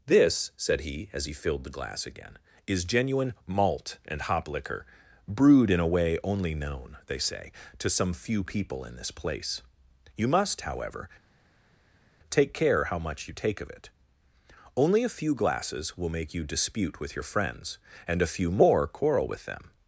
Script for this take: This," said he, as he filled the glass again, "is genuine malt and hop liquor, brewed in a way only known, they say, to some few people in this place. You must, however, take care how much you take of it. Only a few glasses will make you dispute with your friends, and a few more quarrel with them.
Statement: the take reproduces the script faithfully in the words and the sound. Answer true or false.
true